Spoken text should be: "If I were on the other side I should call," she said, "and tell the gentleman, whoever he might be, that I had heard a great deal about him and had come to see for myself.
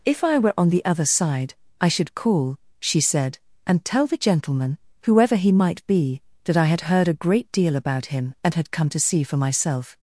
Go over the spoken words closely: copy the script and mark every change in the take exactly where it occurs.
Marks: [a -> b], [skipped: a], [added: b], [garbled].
"If I were on the other side I should call," she said, "and tell the gentleman, whoever he might be, that I had heard a great deal about him and had come to see for myself.